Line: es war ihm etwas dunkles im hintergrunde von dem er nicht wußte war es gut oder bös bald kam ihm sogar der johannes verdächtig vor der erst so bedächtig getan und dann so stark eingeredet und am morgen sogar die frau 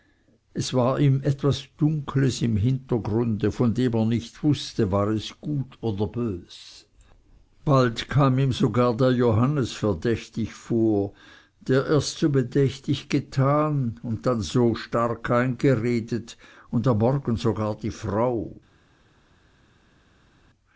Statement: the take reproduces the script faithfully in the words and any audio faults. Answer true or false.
true